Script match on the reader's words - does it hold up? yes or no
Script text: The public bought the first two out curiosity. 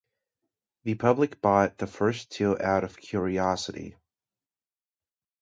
no